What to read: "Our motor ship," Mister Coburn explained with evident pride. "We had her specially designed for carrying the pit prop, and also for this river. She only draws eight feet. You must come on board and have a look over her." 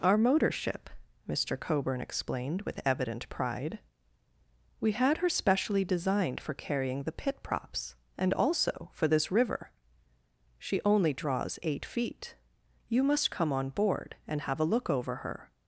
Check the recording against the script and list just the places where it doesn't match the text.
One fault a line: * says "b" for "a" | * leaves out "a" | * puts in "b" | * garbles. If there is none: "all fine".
* says "props" for "prop"